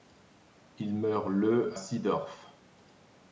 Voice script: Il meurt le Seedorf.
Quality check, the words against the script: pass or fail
pass